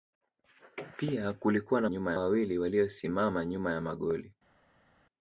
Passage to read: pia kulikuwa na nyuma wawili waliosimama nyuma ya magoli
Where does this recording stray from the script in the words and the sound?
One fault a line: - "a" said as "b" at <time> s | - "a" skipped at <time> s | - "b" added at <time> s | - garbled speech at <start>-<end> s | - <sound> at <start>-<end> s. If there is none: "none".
none